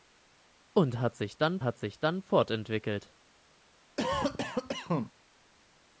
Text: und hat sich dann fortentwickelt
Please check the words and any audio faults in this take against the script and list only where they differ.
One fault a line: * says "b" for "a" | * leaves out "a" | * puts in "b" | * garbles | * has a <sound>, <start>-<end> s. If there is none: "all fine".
* puts in "hat sich dann"
* has a cough, 4.0-5.1 s